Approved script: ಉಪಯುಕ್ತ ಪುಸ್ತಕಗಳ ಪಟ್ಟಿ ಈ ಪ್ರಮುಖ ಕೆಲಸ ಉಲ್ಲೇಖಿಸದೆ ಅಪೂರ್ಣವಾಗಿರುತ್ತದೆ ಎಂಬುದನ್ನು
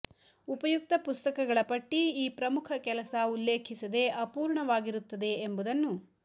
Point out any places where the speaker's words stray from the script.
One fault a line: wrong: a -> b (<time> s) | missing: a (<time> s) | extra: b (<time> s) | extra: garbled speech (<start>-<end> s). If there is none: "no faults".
no faults